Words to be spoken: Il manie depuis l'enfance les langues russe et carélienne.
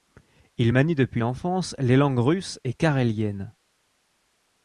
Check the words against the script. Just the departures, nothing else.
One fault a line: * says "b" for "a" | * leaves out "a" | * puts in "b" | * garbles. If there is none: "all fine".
all fine